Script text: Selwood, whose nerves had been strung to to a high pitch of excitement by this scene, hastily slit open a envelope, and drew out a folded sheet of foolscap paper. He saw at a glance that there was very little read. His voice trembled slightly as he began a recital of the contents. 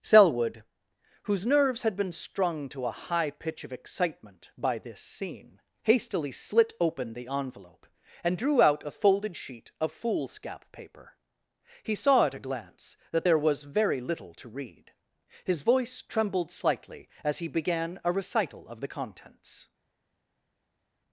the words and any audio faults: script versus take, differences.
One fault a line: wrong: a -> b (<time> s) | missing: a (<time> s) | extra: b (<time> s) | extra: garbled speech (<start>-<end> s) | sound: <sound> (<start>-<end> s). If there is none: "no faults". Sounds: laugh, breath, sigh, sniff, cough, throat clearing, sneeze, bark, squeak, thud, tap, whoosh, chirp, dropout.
missing: to (2.9 s)
wrong: a -> the (7.1 s)
extra: to (14.3 s)